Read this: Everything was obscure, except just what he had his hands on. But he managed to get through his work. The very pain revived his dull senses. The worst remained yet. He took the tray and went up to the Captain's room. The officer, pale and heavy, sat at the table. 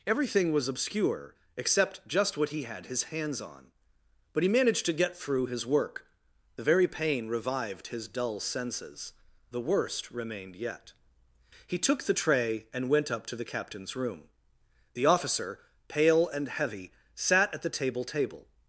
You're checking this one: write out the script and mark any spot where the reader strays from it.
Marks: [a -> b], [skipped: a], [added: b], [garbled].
Everything was obscure, except just what he had his hands on. But he managed to get through his work. The very pain revived his dull senses. The worst remained yet. He took the tray and went up to the Captain's room. The officer, pale and heavy, sat at the table. [added: table]